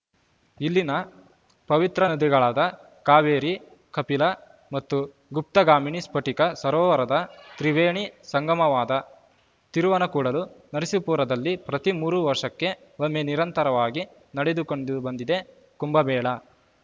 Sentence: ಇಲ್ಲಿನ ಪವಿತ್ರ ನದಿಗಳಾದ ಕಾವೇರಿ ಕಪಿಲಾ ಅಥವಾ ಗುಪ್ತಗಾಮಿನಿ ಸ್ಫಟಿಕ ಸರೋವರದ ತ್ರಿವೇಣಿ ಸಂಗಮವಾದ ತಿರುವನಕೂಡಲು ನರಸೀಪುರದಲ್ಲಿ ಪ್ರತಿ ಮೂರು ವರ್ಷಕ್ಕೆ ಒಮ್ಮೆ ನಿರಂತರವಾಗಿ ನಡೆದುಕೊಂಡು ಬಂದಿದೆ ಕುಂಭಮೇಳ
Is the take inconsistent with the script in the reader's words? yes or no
yes